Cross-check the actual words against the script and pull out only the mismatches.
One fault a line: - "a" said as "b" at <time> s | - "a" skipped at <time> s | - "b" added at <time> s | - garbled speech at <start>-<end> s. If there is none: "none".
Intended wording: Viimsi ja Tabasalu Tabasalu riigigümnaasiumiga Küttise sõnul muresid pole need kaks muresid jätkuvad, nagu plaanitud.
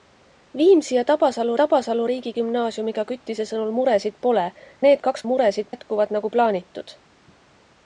none